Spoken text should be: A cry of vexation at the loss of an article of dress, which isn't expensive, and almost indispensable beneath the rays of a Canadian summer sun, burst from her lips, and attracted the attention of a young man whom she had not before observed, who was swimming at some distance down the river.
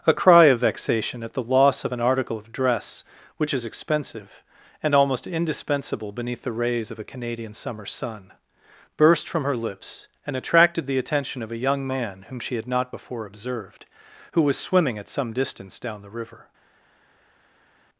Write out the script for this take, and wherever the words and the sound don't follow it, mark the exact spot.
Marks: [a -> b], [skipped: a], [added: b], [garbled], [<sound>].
A cry of vexation at the loss of an article of dress, which [isn't -> is] expensive, and almost indispensable beneath the rays of a Canadian summer sun, burst from her lips, and attracted the attention of a young man whom she had not before observed, who was swimming at some distance down the river.